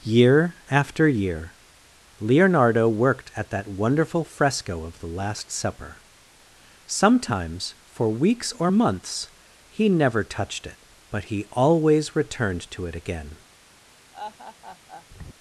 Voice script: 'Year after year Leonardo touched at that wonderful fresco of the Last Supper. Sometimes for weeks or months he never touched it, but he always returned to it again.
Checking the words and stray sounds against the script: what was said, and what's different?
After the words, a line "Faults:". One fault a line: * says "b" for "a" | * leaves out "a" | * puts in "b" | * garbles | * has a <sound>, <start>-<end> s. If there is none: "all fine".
'Year after year Leonardo worked at that wonderful fresco of the Last Supper. Sometimes for weeks or months he never touched it, but he always returned to it again.
Faults:
* says "worked" for "touched"
* has a laugh, 14.1-15.1 s